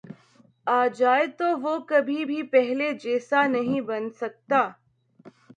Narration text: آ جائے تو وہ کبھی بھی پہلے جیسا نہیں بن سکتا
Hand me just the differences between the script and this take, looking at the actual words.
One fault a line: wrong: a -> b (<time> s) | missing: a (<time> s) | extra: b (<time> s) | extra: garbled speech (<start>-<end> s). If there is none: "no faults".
no faults